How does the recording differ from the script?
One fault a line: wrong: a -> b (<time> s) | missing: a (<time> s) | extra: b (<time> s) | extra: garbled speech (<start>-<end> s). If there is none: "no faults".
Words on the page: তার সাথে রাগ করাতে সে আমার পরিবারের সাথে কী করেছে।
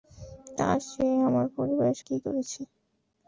missing: সাথে রাগ করাতে (0.8 s)
missing: সাথে (2.0 s)